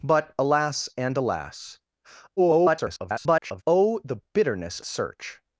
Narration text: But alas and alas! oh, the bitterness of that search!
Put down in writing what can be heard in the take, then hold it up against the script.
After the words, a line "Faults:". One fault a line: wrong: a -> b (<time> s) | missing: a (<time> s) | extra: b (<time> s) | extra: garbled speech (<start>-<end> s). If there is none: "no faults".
But alas and alas! [garbled] oh, the bitterness search!
Faults:
extra: garbled speech (2.4-3.6 s)
missing: of that (4.8 s)